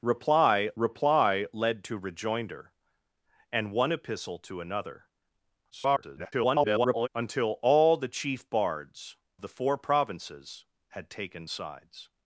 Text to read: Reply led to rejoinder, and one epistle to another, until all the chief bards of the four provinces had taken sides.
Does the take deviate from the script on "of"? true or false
true